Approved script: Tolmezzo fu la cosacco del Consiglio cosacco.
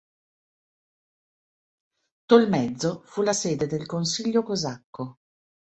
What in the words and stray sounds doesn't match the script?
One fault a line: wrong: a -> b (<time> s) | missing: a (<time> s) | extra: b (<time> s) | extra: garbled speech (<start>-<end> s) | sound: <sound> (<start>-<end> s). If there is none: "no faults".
wrong: cosacco -> sede (3.3 s)